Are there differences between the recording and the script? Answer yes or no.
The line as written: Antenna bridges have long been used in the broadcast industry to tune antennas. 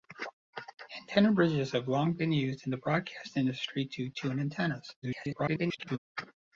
yes